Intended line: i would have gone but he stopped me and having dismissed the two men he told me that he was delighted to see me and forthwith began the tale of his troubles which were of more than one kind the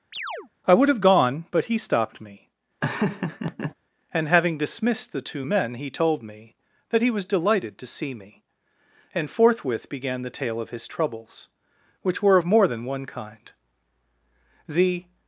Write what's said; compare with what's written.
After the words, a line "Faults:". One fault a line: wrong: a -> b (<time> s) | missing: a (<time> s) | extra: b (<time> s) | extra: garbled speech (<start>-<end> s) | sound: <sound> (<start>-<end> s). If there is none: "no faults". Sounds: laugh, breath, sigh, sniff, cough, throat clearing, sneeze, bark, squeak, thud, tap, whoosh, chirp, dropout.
i would have gone but he stopped me and having dismissed the two men he told me that he was delighted to see me and forthwith began the tale of his troubles which were of more than one kind the
Faults:
sound: chirp (0.1-0.5 s)
sound: laugh (2.8-3.7 s)